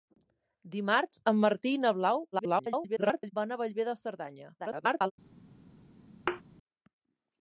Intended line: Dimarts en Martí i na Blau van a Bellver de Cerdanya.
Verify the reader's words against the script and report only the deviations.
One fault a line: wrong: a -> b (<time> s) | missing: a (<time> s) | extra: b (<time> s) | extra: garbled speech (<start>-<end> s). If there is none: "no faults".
extra: garbled speech (2.3-3.3 s)
extra: garbled speech (4.6-5.1 s)